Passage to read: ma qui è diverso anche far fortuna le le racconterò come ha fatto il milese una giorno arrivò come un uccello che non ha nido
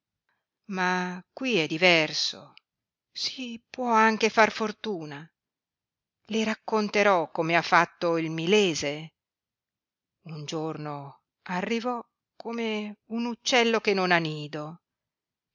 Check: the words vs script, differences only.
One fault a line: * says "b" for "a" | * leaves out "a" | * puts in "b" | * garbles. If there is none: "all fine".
* puts in "si può"
* leaves out "le"
* says "un" for "una"